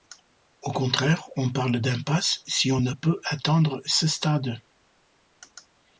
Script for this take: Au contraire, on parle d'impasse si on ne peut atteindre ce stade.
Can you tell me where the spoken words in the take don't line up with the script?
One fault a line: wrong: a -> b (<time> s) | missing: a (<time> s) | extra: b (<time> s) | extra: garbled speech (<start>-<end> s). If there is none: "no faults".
no faults